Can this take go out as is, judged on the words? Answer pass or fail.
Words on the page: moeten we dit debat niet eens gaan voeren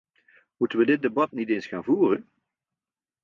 pass